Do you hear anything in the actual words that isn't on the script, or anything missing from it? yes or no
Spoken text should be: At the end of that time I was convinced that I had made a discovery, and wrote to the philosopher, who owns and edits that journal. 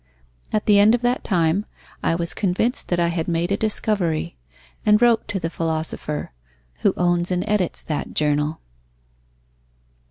no